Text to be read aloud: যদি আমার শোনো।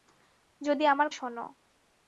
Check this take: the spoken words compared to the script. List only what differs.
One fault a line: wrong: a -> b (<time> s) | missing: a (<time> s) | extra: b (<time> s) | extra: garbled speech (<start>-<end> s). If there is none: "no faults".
no faults